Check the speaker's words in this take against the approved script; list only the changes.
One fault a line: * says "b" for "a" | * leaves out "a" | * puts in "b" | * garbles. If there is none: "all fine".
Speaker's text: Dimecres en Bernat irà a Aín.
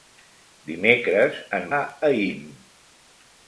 * leaves out "Bernat irà"